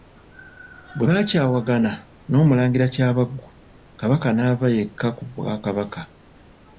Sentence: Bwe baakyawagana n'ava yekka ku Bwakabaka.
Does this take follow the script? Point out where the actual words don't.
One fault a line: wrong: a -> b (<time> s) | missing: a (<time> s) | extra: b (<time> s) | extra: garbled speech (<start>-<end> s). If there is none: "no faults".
extra: n'Omulangira Kyabaggu Kabaka (2.3 s)